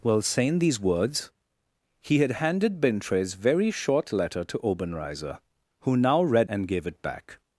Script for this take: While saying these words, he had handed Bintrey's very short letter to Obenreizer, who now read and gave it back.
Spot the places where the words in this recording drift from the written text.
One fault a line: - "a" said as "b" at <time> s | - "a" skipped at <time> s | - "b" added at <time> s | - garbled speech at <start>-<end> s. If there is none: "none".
none